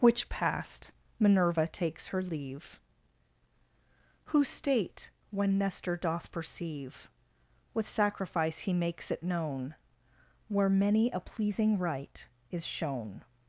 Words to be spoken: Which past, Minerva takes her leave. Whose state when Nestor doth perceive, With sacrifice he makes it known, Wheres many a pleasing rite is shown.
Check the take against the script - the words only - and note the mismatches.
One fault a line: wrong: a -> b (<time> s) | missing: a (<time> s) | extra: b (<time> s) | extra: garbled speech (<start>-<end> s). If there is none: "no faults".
wrong: Wheres -> Where (10.5 s)